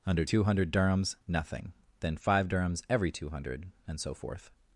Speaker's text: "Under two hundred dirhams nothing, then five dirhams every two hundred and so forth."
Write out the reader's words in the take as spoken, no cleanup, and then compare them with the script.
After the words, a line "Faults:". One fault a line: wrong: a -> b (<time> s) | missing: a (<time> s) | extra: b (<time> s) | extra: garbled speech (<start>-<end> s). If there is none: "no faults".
"Under two hundred dirhams nothing, then five dirhams every two hundred and so forth."
Faults:
no faults